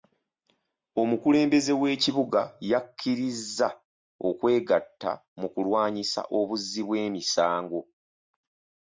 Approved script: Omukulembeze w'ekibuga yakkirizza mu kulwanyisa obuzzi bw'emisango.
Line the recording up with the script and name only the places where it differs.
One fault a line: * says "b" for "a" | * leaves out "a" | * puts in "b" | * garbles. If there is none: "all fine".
* puts in "okwegatta"